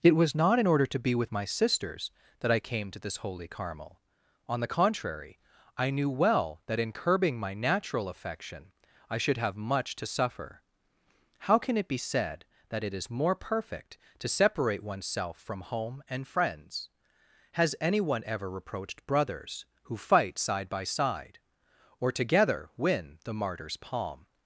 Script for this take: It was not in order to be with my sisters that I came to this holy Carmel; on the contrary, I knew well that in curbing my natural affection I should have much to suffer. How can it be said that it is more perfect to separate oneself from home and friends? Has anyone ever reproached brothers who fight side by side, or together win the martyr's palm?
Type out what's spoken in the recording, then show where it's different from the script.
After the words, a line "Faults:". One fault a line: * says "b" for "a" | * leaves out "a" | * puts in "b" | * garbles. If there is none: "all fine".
It was not in order to be with my sisters that I came to this holy Carmel; on the contrary, I knew well that in curbing my natural affection I should have much to suffer. How can it be said that it is more perfect to separate oneself from home and friends? Has anyone ever reproached brothers who fight side by side, or together win the martyr's palm?
Faults:
all fine